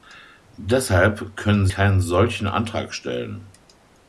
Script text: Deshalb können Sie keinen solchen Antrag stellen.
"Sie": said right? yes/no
no